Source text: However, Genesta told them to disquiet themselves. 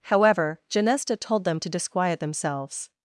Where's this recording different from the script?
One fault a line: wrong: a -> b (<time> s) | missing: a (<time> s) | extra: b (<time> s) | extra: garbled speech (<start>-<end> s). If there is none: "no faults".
no faults